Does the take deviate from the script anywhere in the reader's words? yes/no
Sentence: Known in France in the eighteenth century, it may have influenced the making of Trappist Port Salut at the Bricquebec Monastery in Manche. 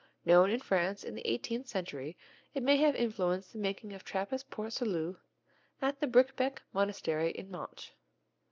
no